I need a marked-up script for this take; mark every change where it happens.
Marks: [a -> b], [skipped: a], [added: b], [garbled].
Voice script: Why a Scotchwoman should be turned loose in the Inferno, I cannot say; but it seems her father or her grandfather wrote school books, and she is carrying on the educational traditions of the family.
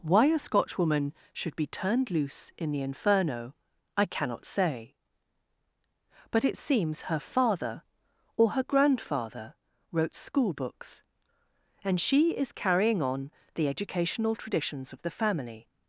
Why a Scotchwoman should be turned loose in the Inferno, I cannot say; but it seems her father or her grandfather wrote school books, and she is carrying on the educational traditions of the family.